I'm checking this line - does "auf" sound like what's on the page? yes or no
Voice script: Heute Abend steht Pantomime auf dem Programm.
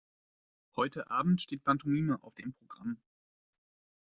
yes